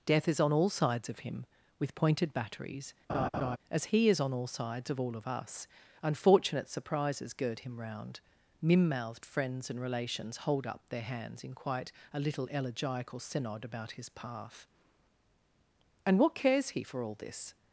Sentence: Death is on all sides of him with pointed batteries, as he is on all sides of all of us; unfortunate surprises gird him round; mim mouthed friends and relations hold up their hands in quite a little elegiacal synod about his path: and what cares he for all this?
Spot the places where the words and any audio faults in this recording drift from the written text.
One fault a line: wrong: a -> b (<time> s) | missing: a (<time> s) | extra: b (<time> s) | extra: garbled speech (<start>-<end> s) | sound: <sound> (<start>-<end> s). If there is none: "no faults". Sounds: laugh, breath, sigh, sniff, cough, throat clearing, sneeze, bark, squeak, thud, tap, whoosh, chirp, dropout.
sound: laugh (3.1-3.6 s)